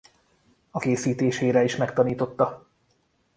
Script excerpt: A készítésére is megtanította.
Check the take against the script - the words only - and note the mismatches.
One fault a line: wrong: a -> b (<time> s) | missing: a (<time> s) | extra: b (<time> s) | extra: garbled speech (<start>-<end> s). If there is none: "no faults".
no faults